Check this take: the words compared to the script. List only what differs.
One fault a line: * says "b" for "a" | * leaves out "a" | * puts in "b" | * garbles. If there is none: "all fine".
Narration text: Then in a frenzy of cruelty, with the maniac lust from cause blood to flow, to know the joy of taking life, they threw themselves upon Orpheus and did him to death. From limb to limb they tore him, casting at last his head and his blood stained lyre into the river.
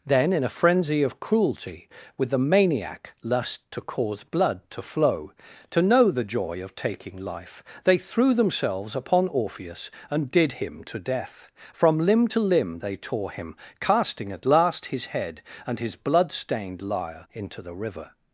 * says "to" for "from"